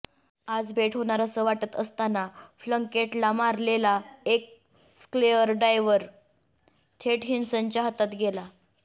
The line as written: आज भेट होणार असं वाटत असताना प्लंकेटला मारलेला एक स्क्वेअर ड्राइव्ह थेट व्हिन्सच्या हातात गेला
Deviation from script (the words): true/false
false